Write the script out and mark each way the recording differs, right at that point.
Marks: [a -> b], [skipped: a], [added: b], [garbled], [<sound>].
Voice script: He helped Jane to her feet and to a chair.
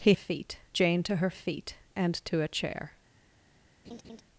He [helped -> feet] Jane to her feet and to a chair. [laugh]